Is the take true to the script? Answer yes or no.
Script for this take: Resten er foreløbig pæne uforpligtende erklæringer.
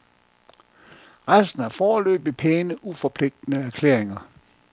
yes